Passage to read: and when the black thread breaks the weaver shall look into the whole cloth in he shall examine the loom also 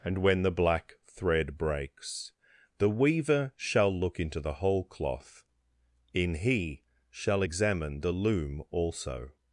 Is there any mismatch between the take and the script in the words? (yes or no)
no